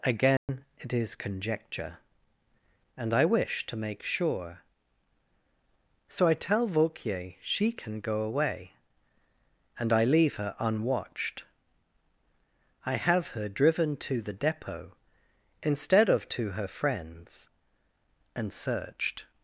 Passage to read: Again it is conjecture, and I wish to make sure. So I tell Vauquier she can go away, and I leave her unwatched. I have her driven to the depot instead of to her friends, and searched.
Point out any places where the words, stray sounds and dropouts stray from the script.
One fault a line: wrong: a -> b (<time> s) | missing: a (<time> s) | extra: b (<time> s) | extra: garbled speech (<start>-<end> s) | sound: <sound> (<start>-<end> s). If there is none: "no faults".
sound: dropout (0.4-0.5 s)